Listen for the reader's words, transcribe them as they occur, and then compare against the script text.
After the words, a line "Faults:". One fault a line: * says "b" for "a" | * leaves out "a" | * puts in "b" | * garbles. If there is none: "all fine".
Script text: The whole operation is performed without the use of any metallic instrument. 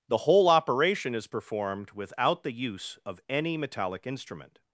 The whole operation is performed without the use of any metallic instrument.
Faults:
all fine